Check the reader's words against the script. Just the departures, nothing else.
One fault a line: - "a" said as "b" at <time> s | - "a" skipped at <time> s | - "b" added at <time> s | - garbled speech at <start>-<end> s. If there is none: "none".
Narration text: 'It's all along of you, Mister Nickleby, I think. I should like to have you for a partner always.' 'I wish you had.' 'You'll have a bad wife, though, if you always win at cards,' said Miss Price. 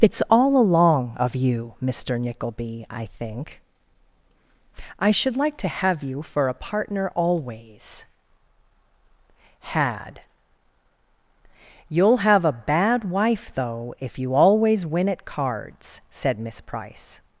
- "I wish you" skipped at 8.1 s